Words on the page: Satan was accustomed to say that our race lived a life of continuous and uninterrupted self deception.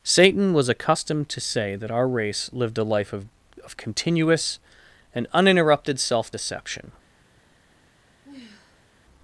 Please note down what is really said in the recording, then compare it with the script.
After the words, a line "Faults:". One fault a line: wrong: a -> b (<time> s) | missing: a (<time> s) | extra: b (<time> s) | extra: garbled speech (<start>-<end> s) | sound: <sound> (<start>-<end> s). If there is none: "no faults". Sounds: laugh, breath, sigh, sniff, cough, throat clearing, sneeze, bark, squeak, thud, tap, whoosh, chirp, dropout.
Satan was accustomed to say that our race lived a life of of continuous and uninterrupted self deception.
Faults:
extra: of (3.6 s)
sound: sigh (8.2-8.9 s)